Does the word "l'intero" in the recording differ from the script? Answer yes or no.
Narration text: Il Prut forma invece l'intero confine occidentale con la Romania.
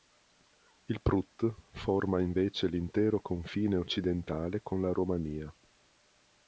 no